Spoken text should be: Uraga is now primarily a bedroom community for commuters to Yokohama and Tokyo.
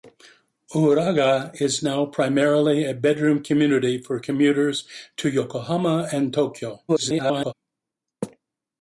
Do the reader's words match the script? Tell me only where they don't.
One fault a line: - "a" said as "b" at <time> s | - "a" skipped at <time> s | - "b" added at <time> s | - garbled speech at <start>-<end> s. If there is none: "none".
- garbled speech at 6.9-7.5 s